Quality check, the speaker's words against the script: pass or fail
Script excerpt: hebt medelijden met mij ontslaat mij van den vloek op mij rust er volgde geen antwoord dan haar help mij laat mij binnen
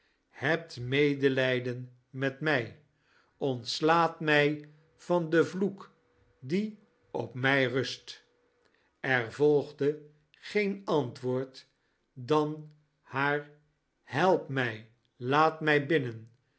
fail